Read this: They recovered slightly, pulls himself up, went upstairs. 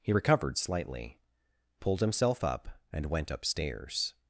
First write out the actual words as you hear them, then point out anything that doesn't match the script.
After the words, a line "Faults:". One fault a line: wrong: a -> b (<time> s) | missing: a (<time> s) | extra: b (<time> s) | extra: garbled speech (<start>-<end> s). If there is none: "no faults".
He recovered slightly, pulled himself up, and went upstairs.
Faults:
wrong: They -> He (0.0 s)
wrong: pulls -> pulled (1.8 s)
extra: and (2.9 s)